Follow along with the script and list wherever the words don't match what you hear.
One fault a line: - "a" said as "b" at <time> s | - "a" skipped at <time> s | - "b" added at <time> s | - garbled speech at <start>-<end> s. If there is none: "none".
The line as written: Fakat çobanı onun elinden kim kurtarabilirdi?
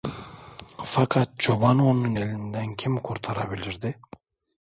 none